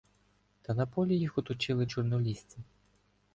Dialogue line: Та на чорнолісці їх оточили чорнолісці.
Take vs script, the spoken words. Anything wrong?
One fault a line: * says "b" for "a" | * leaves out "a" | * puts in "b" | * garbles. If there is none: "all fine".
* says "полі" for "чорнолісці"